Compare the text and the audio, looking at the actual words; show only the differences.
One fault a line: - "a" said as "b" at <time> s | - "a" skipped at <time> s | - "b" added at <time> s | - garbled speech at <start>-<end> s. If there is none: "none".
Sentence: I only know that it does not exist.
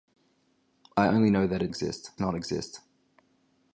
- "does" said as "exist" at 1.7 s